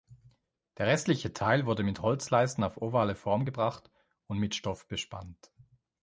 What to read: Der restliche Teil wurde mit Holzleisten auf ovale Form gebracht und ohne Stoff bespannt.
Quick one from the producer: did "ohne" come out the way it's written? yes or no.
no